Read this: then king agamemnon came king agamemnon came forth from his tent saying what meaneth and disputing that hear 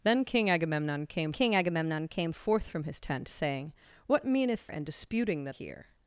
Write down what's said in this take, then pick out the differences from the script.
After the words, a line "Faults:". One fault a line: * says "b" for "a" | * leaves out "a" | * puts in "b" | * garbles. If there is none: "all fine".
then king agamemnon came king agamemnon came forth from his tent saying what meaneth and disputing that hear
Faults:
all fine